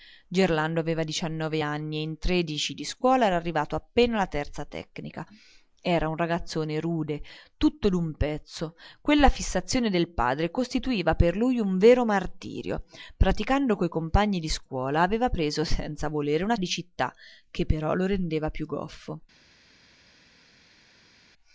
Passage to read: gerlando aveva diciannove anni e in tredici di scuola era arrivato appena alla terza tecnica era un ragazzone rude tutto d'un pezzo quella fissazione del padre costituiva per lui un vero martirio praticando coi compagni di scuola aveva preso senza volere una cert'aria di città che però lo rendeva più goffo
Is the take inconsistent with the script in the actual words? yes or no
yes